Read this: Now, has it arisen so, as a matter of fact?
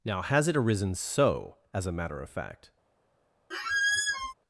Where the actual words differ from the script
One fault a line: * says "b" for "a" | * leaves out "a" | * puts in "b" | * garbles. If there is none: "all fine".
all fine